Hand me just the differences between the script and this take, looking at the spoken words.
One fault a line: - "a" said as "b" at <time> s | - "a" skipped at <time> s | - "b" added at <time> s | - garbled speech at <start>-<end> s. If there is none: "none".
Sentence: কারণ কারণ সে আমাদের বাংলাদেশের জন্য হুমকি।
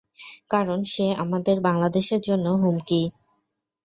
- "কারণ" skipped at 0.8 s